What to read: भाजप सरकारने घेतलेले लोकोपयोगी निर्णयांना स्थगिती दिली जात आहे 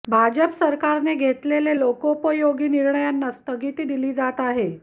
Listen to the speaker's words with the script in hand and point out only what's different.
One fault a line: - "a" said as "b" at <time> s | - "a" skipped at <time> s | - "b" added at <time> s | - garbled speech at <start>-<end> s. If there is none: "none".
none